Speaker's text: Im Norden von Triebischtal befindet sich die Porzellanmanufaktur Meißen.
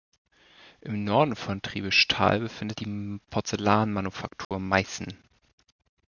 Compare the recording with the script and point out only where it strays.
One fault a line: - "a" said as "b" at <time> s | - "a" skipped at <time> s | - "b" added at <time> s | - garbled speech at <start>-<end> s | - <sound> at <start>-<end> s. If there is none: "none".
- "sich" skipped at 2.8 s
- dropout at 4.4-4.5 s